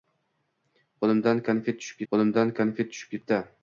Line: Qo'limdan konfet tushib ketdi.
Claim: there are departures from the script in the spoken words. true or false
true